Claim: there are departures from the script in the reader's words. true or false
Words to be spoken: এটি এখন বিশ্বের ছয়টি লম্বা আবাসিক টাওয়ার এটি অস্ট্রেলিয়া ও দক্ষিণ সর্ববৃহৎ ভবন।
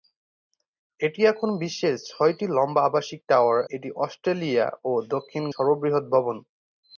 false